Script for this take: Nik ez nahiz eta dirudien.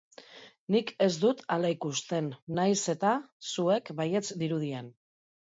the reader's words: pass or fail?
fail